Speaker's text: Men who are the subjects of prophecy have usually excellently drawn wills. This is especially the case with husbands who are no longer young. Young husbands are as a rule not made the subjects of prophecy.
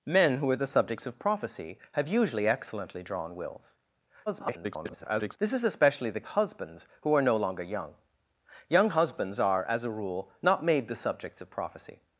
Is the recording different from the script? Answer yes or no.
yes